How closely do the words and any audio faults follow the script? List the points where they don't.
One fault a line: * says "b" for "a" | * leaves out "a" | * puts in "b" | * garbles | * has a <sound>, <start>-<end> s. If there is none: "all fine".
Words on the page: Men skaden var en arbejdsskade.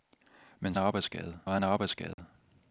* says "arbejdsskade" for "skaden"
* has a dropout, 2.1-2.2 s